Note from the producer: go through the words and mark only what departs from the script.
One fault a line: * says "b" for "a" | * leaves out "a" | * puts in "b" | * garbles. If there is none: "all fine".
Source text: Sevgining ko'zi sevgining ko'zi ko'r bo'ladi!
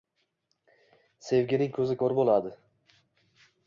* leaves out "sevgining ko'zi"